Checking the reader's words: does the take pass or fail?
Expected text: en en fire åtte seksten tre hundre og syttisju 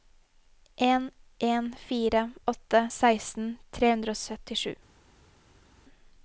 pass